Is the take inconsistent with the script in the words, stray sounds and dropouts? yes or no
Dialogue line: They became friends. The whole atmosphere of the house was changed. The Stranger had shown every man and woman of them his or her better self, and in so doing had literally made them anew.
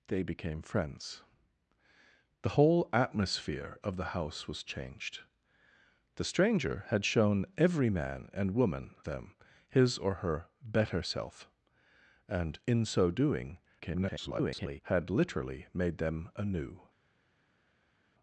yes